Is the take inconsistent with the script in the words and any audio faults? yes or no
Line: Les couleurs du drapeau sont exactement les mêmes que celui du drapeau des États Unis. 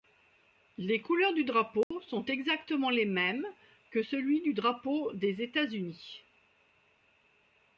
yes